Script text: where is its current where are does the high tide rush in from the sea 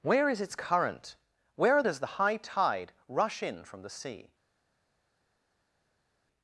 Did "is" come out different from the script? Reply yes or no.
no